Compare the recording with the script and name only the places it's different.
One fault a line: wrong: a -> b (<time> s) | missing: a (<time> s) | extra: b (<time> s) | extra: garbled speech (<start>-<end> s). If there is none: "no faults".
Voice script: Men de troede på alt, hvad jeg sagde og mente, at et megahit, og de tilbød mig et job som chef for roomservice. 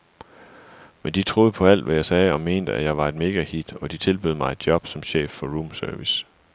extra: jeg var (2.8 s)